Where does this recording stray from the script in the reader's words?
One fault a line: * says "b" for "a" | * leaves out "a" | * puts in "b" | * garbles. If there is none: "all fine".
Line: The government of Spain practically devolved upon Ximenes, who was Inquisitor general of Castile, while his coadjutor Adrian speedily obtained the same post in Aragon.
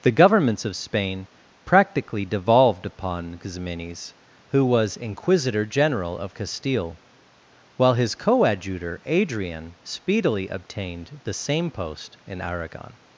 * says "governments" for "government"